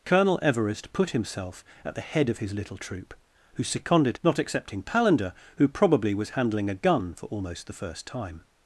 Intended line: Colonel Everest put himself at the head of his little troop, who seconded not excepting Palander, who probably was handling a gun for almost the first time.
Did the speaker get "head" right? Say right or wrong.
right